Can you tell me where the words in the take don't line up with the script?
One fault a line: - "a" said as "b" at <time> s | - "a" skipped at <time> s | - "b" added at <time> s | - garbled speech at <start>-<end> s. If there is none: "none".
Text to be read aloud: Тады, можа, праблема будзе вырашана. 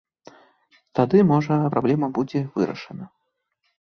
none